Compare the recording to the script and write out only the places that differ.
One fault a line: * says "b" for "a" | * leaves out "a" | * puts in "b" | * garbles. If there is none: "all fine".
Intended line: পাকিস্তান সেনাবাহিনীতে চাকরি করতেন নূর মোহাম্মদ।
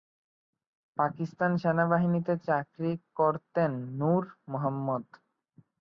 all fine